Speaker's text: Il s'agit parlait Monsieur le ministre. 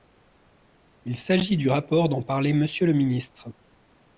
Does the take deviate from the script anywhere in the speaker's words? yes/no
yes